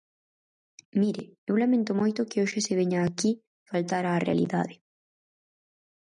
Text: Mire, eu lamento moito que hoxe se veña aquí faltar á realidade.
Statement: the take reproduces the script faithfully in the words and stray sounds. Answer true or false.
true